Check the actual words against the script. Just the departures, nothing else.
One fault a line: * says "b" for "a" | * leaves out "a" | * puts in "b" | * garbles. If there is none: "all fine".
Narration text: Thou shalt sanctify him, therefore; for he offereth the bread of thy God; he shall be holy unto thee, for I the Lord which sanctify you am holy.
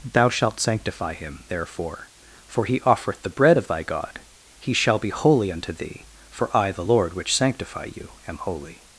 all fine